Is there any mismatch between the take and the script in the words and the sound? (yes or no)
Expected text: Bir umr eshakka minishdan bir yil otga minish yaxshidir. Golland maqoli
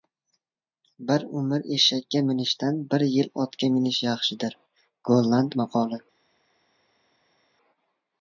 no